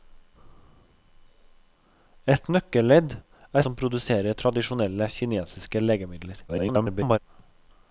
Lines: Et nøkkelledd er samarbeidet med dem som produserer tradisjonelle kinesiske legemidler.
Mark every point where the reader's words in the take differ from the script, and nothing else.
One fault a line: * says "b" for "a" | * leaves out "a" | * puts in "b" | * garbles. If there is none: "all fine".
* leaves out "samarbeidet med dem"
* garbles